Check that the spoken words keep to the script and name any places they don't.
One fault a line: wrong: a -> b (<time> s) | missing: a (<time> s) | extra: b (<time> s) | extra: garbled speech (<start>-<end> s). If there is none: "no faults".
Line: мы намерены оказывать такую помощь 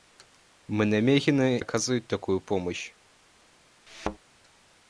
no faults